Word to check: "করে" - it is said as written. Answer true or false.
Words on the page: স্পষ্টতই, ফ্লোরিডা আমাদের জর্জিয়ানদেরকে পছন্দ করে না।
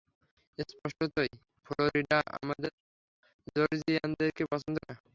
false